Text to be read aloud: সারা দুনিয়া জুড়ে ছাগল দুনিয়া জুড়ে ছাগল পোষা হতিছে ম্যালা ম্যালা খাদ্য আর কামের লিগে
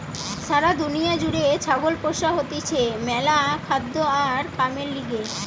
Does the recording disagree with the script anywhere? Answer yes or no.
yes